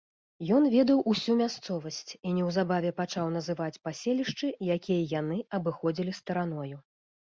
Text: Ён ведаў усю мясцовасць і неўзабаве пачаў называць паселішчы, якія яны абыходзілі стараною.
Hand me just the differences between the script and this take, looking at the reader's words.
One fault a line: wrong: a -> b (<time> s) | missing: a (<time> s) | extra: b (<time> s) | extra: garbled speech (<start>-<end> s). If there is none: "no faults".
no faults